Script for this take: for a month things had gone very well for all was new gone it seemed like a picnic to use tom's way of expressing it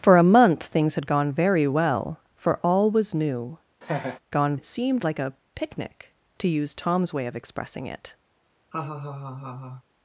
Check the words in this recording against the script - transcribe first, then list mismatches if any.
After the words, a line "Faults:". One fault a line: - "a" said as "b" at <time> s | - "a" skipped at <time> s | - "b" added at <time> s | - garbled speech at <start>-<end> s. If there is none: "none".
for a month things had gone very well for all was new gone it seemed like a picnic to use tom's way of expressing it
Faults:
none